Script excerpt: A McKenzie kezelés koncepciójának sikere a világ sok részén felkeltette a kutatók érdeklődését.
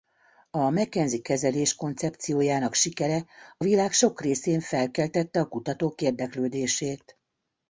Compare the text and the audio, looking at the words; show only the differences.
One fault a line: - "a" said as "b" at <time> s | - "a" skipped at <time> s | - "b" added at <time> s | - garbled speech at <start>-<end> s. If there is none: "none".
none